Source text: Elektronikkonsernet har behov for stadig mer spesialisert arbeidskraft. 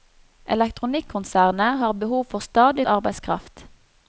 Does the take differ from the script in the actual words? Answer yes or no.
yes